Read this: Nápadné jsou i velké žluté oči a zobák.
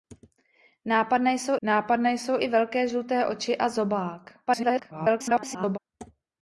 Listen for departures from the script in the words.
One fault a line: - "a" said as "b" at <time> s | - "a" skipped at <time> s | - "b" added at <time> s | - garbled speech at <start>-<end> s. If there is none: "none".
- "nápadné jsou" added at 1.6 s
- garbled speech at 4.5-5.8 s